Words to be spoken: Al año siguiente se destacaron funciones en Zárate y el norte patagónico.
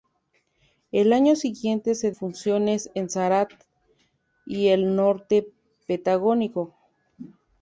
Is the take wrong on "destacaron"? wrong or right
wrong